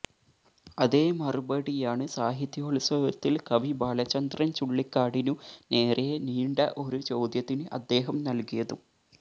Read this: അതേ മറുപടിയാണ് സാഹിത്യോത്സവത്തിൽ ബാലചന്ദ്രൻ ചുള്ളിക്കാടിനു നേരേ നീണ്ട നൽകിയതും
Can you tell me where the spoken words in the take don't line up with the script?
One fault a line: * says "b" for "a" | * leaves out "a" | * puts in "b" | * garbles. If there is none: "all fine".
* puts in "കവി"
* puts in "ഒരു ചോദ്യത്തിന് അദ്ദേഹം"